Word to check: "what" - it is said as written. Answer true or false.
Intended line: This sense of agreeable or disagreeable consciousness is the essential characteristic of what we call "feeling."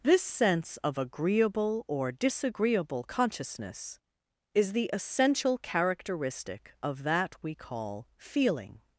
false